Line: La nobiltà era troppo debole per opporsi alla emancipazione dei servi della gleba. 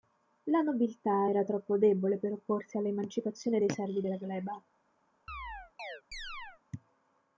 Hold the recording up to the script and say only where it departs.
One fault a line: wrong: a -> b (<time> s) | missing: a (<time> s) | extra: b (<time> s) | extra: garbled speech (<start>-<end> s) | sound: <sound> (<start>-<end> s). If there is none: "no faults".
sound: chirp (5.3-6.6 s)